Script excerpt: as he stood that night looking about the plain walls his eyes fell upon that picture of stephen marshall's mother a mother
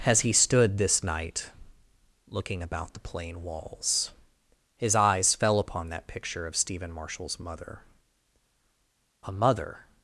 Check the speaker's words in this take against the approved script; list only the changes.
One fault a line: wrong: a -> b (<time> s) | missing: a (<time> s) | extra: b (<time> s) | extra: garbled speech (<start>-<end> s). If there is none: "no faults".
wrong: that -> this (0.8 s)